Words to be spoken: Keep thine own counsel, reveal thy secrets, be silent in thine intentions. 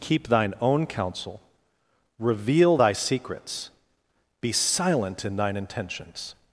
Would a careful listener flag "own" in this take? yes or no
no